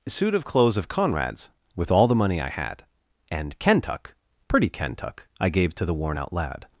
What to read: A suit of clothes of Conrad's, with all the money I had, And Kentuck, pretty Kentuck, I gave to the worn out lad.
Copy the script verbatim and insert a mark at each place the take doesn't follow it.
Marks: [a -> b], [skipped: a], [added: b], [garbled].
[skipped: A] suit of clothes of Conrad's, with all the money I had, And Kentuck, pretty Kentuck, I gave to the worn out lad.